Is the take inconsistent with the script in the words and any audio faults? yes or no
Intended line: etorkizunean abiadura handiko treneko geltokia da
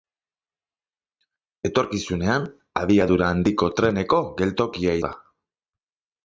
no